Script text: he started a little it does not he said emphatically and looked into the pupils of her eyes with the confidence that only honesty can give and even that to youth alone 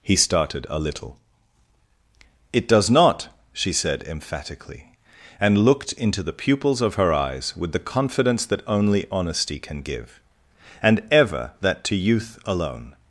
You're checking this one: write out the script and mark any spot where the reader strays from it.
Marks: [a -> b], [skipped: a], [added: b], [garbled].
he started a little it does not [he -> she] said emphatically and looked into the pupils of her eyes with the confidence that only honesty can give and [even -> ever] that to youth alone